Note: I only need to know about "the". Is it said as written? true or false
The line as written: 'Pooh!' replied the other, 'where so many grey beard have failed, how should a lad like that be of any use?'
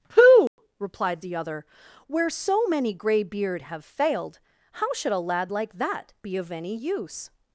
true